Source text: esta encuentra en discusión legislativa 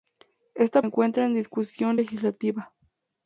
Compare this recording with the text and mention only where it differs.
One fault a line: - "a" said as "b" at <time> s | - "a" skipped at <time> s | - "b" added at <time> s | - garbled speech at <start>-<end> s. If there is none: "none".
none